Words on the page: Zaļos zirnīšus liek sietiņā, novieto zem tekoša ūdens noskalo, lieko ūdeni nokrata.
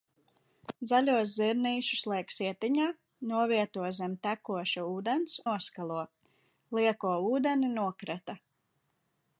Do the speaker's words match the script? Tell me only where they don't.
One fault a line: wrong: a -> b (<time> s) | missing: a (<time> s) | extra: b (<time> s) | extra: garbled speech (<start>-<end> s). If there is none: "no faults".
no faults